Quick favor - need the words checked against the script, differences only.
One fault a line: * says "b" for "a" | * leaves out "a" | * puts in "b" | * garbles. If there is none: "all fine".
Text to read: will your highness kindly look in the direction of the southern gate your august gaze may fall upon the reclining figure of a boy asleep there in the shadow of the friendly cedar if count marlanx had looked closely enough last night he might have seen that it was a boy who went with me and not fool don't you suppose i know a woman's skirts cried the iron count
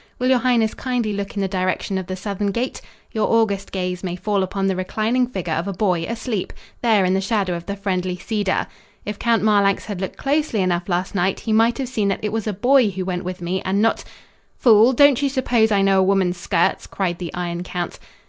all fine